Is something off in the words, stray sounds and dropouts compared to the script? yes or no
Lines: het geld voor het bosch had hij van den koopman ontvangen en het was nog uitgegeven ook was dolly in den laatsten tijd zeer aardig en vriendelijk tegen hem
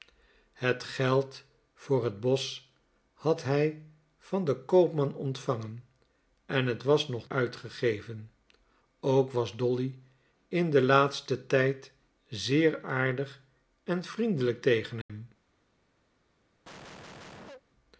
yes